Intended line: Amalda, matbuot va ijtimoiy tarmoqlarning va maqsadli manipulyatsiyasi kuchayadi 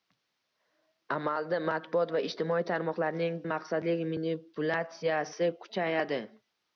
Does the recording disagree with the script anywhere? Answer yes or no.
no